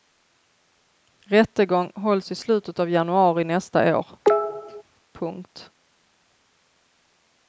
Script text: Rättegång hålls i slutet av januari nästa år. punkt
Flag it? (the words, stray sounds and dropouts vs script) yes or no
yes